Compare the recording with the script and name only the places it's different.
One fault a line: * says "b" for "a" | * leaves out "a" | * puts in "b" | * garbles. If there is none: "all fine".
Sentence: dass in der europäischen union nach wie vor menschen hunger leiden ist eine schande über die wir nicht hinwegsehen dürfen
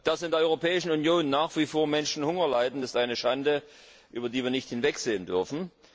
all fine